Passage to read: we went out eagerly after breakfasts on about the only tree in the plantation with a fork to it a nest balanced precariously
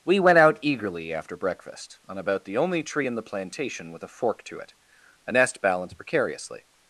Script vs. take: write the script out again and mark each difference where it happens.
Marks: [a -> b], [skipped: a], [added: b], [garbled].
we went out eagerly after [breakfasts -> breakfast] on about the only tree in the plantation with a fork to it a nest balanced precariously